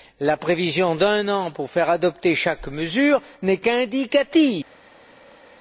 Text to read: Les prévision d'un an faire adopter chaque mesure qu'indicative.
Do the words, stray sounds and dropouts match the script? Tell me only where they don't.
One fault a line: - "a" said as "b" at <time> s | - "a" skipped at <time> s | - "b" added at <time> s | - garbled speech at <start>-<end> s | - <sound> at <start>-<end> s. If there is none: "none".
- "Les" said as "La" at 0.2 s
- "pour" added at 1.5 s
- "n'est" added at 3.4 s